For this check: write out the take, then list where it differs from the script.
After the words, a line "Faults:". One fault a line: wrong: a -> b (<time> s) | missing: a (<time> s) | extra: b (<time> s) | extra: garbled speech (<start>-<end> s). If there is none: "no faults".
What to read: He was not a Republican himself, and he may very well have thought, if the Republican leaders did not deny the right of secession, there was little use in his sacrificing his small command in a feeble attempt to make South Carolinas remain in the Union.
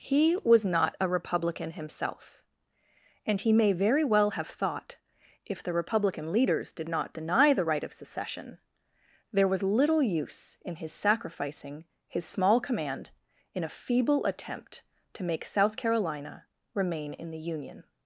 He was not a Republican himself, and he may very well have thought, if the Republican leaders did not deny the right of secession, there was little use in his sacrificing his small command in a feeble attempt to make South Carolina remain in the Union.
Faults:
wrong: Carolinas -> Carolina (15.8 s)